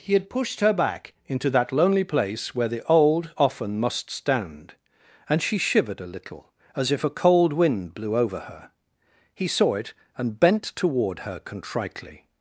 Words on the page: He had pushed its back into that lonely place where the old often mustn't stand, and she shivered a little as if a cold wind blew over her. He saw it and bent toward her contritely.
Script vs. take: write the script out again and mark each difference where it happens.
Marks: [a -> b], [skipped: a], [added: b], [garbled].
He had pushed [its -> her] back into that lonely place where the old often [mustn't -> must] stand, and she shivered a little as if a cold wind blew over her. He saw it and bent toward her contritely.